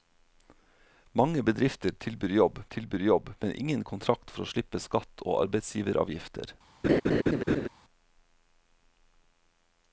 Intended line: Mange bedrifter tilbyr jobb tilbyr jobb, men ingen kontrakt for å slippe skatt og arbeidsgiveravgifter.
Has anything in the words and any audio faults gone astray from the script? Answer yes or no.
yes